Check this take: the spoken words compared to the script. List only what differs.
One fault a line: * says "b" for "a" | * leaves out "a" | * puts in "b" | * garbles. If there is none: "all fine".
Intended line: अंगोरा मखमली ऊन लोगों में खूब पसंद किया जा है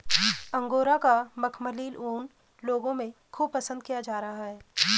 * puts in "का"
* puts in "रहा"